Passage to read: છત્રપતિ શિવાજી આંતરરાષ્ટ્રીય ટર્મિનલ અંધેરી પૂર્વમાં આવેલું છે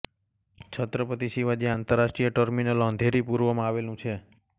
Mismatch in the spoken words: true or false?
false